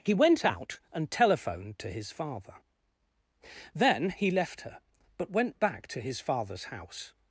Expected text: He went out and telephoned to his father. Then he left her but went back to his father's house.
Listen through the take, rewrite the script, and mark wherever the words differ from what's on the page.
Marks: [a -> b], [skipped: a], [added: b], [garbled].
He went out and telephoned to his father. Then he left her but went back to his father's house.